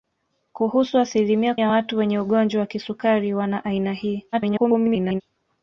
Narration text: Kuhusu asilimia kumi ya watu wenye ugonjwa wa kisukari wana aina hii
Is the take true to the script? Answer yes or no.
no